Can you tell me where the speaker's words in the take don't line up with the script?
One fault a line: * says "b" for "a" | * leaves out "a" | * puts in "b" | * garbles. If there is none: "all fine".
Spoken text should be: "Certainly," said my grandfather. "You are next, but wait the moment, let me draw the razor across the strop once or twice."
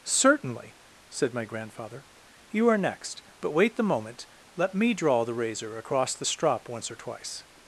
all fine